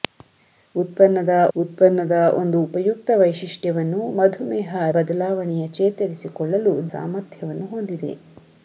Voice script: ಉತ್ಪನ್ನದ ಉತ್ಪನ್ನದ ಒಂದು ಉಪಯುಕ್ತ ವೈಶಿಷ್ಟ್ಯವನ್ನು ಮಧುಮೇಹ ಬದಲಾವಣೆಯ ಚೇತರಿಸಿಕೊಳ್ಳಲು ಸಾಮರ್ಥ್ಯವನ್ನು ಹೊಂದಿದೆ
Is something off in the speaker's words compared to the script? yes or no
no